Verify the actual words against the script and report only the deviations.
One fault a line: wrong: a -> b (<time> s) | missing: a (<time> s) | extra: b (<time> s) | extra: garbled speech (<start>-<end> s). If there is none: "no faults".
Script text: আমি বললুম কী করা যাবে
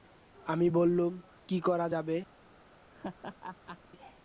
no faults